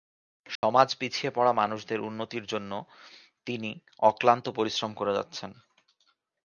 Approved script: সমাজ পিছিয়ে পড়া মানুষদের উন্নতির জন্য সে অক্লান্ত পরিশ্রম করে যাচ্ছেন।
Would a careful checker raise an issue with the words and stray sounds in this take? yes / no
yes